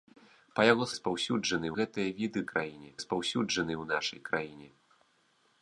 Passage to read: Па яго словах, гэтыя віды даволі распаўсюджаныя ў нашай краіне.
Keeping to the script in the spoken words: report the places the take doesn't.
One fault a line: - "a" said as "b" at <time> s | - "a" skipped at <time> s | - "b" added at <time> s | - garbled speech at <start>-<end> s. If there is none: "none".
- "словах" said as "распаўсюджаныя" at 0.9 s
- "даволі" said as "краіне" at 2.5 s